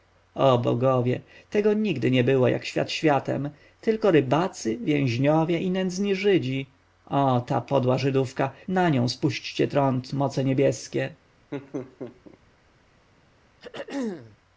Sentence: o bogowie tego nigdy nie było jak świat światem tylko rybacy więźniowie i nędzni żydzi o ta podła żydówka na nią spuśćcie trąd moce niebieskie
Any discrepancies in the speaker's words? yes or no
no